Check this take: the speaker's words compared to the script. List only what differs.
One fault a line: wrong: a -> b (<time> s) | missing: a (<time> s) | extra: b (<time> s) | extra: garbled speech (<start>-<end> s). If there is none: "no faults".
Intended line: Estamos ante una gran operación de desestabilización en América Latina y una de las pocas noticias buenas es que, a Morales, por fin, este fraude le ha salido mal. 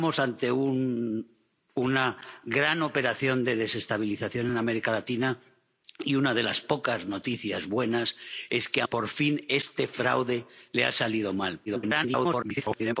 missing: Morales (8.9 s)
extra: garbled speech (11.7-13.0 s)